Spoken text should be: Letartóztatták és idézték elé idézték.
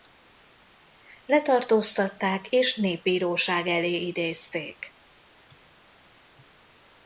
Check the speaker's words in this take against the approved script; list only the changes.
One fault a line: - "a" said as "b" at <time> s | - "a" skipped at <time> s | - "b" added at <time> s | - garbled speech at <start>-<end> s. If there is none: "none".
- "idézték" said as "népbíróság" at 2.8 s